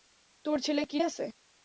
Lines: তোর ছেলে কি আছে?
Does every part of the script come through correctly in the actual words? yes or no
yes